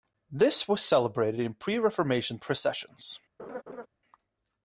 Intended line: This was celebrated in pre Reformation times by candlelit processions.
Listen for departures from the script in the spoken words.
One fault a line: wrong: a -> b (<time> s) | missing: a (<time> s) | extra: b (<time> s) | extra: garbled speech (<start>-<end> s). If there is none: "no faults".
missing: times by candlelit (2.4 s)